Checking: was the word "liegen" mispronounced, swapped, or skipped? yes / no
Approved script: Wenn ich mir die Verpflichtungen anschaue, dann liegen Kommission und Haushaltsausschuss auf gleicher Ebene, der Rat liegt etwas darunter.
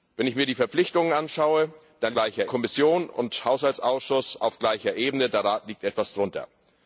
yes